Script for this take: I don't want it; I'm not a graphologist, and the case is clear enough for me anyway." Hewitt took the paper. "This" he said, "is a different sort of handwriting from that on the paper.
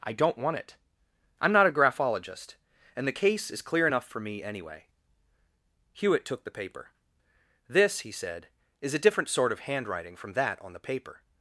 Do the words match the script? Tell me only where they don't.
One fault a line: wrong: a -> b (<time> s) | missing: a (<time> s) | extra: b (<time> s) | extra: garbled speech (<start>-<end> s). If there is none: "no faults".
no faults